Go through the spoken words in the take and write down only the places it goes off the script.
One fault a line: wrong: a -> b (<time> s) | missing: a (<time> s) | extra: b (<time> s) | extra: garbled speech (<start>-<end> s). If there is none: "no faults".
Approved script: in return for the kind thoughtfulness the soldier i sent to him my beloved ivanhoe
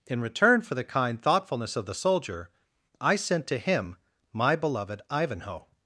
extra: of (1.8 s)